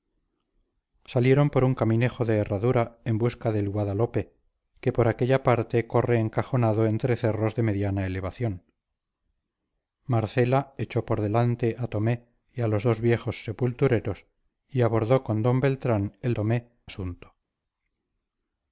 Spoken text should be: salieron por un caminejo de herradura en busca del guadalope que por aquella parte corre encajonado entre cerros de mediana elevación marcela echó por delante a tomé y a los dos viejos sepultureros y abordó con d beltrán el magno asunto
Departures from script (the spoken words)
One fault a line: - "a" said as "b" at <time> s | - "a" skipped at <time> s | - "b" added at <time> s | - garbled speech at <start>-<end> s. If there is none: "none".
- "magno" said as "tomé" at 16.3 s